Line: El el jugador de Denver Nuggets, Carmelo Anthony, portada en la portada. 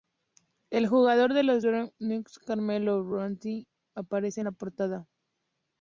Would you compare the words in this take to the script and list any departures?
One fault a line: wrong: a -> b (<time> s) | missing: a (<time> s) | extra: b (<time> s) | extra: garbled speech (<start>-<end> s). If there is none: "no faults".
missing: el (0.9 s)
extra: los (1.4 s)
wrong: portada -> aparece (4.0 s)